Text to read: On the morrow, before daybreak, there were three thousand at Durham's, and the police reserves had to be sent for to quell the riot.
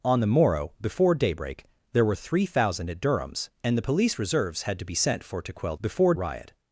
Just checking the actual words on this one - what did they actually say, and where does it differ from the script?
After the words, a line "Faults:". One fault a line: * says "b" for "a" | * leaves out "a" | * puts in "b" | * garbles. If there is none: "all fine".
On the morrow, before daybreak, there were three thousand at Durham's, and the police reserves had to be sent for to quell before riot.
Faults:
* says "before" for "the"